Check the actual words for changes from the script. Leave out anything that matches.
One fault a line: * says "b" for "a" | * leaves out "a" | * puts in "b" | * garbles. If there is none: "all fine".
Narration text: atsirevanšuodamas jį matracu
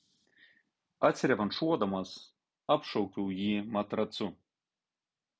* puts in "apšaukiau"